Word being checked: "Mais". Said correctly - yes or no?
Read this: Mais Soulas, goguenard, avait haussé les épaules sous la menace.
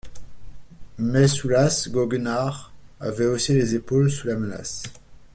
yes